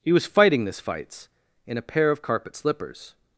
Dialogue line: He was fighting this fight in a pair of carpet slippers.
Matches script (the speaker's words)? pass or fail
fail